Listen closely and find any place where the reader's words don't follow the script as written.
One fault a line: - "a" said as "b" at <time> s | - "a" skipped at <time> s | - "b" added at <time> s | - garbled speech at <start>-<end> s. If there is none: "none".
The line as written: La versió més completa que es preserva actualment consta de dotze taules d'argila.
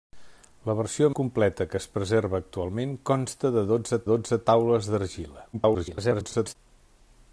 - "més" skipped at 1.1 s
- "dotze" added at 4.1 s
- garbled speech at 5.5-6.6 s